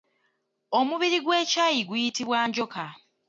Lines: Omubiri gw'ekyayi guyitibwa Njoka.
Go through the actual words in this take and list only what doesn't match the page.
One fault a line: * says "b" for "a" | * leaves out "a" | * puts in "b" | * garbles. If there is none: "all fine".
all fine